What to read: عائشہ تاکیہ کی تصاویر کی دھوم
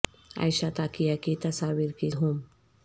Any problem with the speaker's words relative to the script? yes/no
no